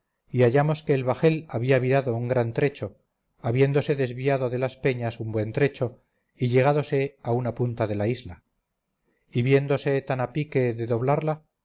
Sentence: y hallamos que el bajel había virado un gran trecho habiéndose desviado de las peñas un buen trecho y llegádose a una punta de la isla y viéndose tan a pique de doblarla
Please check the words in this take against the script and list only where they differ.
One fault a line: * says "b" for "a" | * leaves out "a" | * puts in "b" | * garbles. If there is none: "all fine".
all fine